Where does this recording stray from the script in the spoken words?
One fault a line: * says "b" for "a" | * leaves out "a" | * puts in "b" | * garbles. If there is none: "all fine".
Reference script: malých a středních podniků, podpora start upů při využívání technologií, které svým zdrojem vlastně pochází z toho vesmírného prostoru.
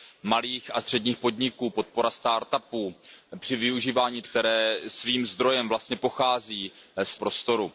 * leaves out "technologií"
* leaves out "toho vesmírného"